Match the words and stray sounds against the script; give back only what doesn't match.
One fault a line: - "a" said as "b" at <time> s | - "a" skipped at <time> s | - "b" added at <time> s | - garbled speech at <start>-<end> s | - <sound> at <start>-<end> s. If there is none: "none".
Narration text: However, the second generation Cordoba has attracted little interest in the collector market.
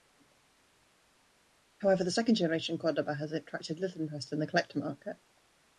none